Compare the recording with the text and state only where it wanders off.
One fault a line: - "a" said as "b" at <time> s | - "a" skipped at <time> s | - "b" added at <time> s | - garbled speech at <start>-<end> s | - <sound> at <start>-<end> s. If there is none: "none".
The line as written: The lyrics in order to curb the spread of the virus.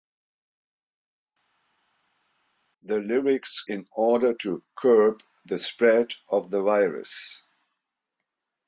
none